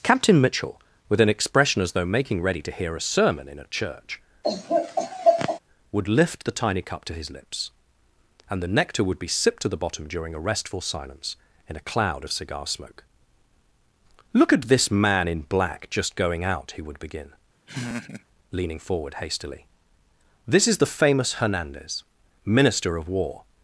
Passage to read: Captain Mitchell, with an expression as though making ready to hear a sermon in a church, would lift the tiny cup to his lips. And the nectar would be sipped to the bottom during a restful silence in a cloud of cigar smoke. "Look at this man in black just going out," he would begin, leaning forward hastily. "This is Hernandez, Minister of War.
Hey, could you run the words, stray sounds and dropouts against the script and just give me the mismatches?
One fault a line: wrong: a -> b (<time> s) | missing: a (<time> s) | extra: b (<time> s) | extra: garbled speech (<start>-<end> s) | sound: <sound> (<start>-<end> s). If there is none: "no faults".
sound: laugh (4.4-5.6 s)
sound: laugh (17.7-18.3 s)
extra: the famous (20.8 s)